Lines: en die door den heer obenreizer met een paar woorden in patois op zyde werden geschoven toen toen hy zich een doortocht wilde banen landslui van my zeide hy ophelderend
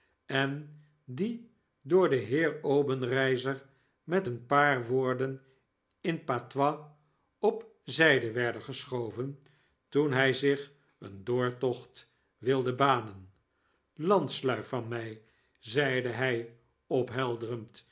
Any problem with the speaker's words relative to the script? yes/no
yes